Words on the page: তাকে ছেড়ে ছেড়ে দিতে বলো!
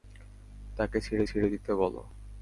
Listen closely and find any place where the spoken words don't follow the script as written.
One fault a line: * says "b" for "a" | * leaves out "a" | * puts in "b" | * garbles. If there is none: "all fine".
all fine